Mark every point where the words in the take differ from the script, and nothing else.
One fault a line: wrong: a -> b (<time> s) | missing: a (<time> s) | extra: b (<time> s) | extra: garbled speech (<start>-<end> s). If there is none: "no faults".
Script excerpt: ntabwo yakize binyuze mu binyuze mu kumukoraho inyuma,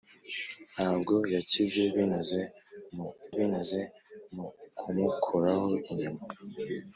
no faults